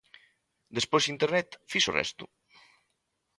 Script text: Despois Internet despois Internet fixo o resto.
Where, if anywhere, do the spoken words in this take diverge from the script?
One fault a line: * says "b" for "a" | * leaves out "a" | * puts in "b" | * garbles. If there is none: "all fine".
* leaves out "despois Internet"